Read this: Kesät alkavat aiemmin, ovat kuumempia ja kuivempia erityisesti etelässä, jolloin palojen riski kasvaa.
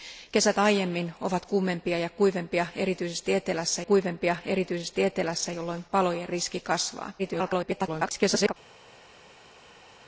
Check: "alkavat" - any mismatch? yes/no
yes